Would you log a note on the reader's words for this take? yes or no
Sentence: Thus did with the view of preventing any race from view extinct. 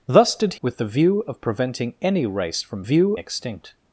no